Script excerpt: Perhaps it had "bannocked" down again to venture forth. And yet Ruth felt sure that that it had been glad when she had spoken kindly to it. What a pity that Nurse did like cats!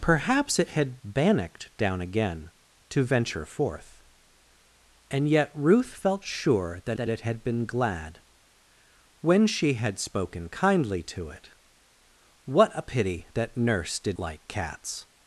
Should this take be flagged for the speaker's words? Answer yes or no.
no